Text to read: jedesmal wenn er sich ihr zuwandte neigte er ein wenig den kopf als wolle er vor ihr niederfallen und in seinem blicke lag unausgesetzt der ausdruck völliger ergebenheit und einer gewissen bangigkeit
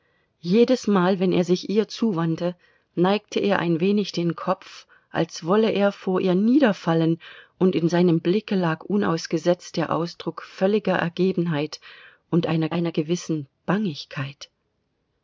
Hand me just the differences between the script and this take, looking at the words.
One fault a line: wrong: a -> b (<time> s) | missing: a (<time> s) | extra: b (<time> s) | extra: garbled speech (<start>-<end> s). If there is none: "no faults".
extra: einer (12.7 s)